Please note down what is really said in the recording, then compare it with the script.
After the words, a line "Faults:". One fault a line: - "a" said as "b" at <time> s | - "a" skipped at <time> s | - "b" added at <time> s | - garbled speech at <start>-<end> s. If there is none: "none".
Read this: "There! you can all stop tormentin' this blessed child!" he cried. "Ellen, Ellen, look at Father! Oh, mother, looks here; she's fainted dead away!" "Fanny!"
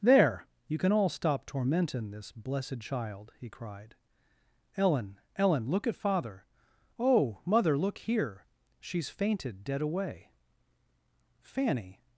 "There! you can all stop tormentin' this blessed child!" he cried. "Ellen, Ellen, look at Father! Oh, mother, look here; she's fainted dead away!" "Fanny!"
Faults:
- "looks" said as "look" at 7.8 s